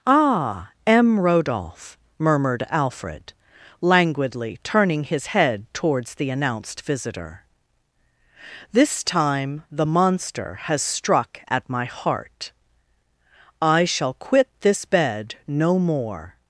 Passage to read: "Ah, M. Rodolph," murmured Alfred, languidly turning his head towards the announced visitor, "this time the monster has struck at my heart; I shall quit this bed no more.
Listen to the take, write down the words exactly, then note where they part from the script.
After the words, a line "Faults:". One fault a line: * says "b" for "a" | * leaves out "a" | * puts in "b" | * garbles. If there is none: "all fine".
"Ah, M. Rodolph," murmured Alfred, languidly turning his head towards the announced visitor, "this time the monster has struck at my heart; I shall quit this bed no more.
Faults:
all fine